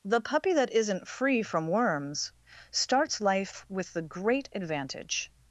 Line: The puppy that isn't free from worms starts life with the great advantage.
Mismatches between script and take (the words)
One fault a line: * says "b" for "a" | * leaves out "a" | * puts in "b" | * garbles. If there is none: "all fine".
all fine